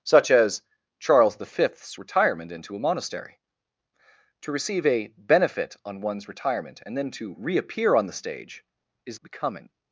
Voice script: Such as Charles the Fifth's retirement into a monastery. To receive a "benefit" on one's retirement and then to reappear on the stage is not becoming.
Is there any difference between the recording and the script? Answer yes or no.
yes